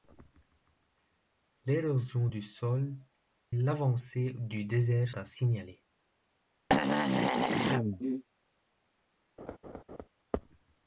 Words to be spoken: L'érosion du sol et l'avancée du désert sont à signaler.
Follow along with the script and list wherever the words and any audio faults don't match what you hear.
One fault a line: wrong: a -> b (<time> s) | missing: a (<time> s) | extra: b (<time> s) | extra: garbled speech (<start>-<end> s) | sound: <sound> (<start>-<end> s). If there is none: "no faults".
missing: et (2.9 s)
missing: sont (5.1 s)
sound: throat clearing (6.7-8.2 s)
sound: laugh (9.4-10.1 s)